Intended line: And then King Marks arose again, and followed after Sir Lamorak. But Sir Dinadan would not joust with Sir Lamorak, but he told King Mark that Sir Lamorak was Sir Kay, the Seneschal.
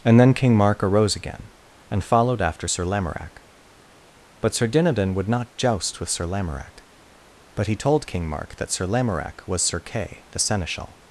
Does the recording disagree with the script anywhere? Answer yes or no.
yes